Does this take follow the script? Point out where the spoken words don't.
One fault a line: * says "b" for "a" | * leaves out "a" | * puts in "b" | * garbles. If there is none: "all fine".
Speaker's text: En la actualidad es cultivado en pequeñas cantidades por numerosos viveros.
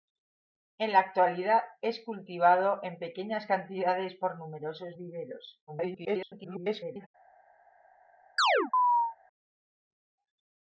* garbles